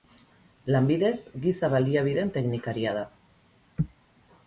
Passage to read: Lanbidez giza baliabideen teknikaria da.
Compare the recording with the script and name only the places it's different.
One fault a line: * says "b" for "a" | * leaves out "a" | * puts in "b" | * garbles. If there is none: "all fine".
all fine